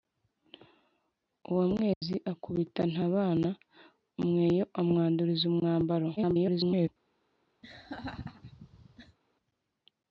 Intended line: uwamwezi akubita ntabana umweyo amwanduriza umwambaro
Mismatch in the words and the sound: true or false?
true